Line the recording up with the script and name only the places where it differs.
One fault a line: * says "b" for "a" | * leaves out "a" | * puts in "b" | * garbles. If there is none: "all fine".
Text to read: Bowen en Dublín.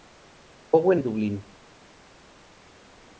all fine